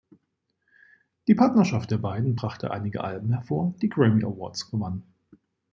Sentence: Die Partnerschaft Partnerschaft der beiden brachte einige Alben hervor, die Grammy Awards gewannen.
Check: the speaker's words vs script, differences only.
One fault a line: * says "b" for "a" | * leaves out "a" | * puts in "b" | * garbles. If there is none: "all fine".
* leaves out "Partnerschaft"